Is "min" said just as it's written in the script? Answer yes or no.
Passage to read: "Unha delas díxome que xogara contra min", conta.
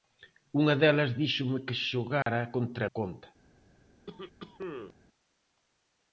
no